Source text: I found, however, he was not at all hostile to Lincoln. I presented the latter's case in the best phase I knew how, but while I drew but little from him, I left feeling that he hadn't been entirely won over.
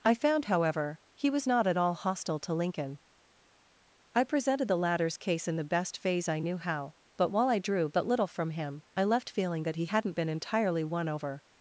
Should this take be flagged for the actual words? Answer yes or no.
no